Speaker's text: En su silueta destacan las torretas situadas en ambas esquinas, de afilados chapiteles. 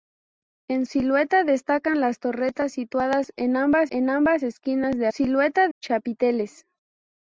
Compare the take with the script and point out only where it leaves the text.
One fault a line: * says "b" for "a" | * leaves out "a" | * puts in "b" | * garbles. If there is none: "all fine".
* leaves out "su"
* puts in "en ambas"
* says "silueta" for "afilados"